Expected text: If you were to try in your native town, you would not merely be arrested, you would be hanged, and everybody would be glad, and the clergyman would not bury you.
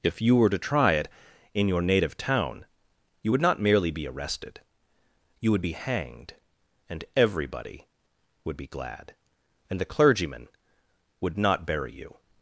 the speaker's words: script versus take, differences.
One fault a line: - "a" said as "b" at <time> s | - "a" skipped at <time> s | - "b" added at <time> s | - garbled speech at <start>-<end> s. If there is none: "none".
- "it" added at 0.9 s